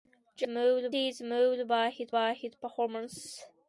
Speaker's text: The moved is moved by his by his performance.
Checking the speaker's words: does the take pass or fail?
pass